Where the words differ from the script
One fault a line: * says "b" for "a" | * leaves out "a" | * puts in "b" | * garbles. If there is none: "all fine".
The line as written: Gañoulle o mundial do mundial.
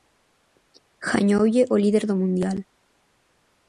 * says "líder" for "mundial"